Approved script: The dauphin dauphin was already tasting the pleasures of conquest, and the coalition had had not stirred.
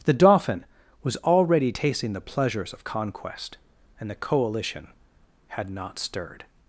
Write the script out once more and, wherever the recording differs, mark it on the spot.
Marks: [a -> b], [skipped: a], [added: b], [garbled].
The dauphin [skipped: dauphin] was already tasting the pleasures of conquest, and the coalition had [skipped: had] not stirred.